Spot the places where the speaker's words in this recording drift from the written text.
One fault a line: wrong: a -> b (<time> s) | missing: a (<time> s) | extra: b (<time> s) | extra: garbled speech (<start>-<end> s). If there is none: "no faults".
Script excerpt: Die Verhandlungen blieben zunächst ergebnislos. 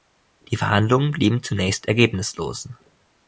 no faults